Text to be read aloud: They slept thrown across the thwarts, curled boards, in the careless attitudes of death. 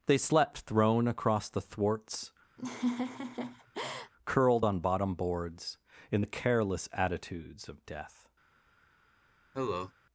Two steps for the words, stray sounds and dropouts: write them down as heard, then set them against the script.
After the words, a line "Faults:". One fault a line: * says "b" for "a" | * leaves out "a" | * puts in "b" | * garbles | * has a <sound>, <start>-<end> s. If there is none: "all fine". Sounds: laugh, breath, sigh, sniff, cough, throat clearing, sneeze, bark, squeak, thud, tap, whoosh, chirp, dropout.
They slept thrown across the thwarts, curled on bottom boards, in the careless attitudes of death.
Faults:
* has a laugh, 2.6-4.1 s
* puts in "on bottom"
* has a cough, 9.5-9.9 s